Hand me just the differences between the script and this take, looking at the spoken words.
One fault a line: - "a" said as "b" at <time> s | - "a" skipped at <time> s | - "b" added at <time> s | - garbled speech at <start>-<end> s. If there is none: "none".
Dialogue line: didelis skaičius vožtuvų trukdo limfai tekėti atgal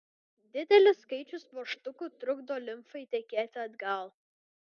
none